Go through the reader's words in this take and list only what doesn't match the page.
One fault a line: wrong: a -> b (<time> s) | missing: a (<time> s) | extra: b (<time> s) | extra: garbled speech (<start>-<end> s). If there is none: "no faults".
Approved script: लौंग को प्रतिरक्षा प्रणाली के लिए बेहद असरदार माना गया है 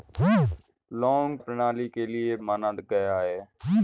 missing: को प्रतिरक्षा (1.4 s)
missing: बेहद असरदार (2.4 s)